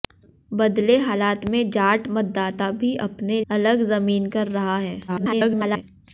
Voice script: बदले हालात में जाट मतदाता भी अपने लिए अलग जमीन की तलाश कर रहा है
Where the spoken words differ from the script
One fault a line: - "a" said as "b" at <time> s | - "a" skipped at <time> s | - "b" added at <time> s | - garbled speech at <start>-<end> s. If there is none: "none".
- "लिए" skipped at 3.4 s
- "की तलाश" skipped at 4.3 s
- garbled speech at 5.1-5.8 s